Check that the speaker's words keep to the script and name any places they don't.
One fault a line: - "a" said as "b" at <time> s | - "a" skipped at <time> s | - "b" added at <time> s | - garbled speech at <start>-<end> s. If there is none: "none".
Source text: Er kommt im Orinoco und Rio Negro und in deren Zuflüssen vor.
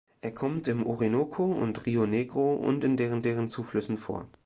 - "deren" added at 3.2 s